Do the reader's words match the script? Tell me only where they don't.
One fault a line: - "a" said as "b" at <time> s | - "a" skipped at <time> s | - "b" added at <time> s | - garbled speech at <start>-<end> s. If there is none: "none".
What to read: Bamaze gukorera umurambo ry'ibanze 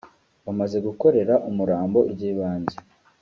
none